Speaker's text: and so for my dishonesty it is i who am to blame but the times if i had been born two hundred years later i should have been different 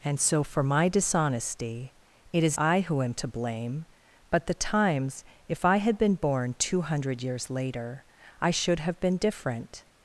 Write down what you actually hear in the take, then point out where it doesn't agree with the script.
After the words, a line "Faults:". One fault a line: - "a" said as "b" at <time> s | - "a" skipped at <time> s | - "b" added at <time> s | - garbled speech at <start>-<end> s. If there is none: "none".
and so for my dishonesty it is i who am to blame but the times if i had been born two hundred years later i should have been different
Faults:
none